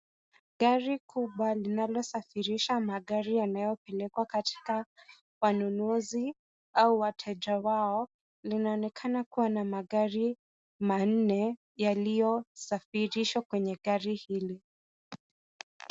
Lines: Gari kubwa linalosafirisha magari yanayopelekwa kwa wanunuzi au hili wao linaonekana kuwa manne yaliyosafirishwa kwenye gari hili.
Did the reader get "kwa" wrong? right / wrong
wrong